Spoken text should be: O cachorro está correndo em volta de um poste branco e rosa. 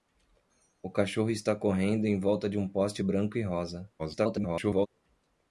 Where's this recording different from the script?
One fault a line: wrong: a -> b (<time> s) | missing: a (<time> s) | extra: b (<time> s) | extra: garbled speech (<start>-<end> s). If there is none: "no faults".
extra: garbled speech (4.0-4.9 s)